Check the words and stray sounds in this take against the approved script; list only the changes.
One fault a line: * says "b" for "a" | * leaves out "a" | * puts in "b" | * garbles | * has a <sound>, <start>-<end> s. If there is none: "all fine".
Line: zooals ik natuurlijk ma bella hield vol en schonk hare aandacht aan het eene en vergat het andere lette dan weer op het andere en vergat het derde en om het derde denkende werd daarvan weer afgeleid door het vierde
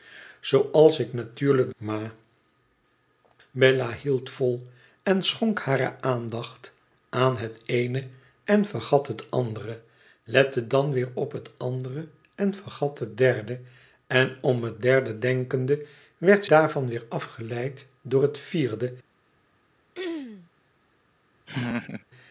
* has a throat clearing, 19.9-20.5 s
* has a laugh, 21.5-22.0 s